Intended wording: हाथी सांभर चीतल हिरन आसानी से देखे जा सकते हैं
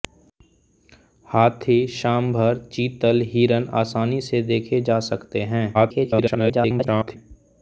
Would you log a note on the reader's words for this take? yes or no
yes